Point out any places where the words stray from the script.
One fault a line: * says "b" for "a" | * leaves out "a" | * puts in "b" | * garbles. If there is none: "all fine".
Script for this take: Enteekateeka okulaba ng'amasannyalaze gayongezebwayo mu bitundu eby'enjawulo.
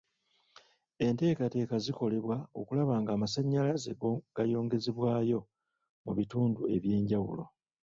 * puts in "zikolebwa"